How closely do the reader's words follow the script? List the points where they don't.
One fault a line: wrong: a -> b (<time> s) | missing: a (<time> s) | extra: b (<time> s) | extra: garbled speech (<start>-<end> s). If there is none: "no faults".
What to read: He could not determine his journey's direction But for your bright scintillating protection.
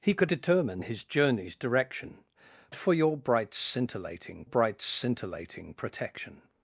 missing: not (0.3 s)
missing: But (2.2 s)
extra: bright scintillating (4.4 s)